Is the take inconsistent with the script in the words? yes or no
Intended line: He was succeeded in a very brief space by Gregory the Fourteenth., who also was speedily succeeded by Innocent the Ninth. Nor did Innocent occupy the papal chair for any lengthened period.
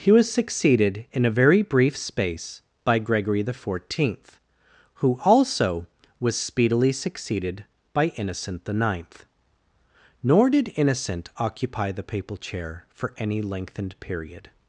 no